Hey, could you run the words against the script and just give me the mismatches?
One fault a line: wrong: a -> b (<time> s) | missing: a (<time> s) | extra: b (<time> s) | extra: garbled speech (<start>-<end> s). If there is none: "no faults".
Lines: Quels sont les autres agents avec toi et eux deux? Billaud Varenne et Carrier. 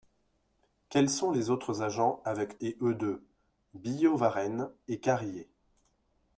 missing: toi (2.6 s)